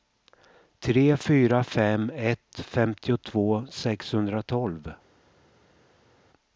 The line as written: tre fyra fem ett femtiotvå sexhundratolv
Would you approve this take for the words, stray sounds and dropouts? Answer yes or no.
yes